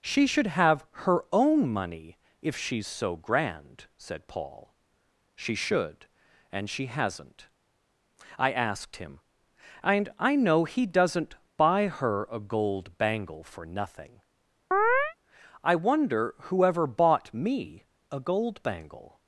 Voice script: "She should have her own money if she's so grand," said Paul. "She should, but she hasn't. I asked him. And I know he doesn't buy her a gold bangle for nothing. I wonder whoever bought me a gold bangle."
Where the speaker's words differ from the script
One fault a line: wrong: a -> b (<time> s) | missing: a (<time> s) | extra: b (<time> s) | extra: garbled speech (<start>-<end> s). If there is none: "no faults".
wrong: but -> and (6.5 s)